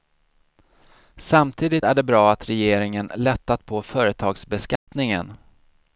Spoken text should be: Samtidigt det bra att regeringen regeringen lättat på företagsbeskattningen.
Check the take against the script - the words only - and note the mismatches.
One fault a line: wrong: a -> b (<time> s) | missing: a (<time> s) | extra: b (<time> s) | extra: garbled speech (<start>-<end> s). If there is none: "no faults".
extra: är (1.8 s)
missing: regeringen (3.1 s)